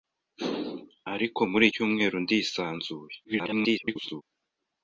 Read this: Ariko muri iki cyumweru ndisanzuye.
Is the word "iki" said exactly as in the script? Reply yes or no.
no